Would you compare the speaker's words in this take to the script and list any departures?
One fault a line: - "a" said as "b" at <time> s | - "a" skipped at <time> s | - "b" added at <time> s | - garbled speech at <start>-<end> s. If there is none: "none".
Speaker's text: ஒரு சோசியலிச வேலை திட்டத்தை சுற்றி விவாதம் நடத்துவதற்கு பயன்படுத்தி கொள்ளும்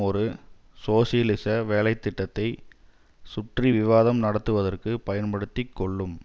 none